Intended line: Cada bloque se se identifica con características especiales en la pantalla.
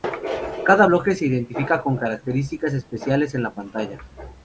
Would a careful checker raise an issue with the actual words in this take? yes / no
yes